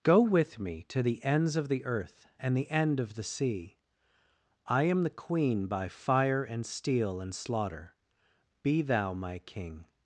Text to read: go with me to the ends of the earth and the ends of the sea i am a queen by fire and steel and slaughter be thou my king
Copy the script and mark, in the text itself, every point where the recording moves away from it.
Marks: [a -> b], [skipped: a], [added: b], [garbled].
go with me to the ends of the earth and the [ends -> end] of the sea i am [a -> the] queen by fire and steel and slaughter be thou my king